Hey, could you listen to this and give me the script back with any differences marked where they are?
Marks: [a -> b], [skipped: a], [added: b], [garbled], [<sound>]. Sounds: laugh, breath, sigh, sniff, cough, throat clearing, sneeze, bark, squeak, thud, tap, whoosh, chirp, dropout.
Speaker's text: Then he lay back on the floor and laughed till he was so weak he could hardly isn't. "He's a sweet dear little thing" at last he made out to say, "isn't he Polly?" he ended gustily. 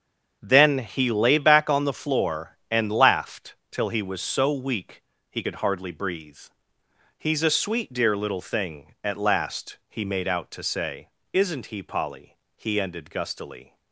Then he lay back on the floor and laughed till he was so weak he could hardly [isn't. -> breathe] "He's a sweet dear little thing" at last he made out to say, "isn't he Polly?" he ended gustily.